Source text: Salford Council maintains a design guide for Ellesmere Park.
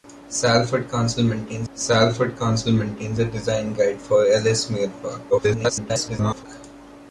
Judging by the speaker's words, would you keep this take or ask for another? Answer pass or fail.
fail